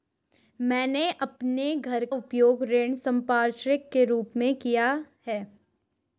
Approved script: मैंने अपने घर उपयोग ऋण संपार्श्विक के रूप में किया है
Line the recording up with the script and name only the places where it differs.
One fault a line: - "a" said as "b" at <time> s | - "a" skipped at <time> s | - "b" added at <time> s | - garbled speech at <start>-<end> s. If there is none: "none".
none